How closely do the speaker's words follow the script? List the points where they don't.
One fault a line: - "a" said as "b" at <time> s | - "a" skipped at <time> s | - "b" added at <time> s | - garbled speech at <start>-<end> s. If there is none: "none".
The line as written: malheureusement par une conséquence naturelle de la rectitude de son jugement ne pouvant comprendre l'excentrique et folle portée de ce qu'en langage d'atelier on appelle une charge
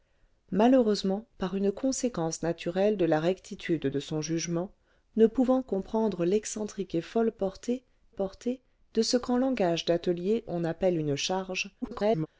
- "portée" added at 8.1 s
- garbled speech at 11.8-12.3 s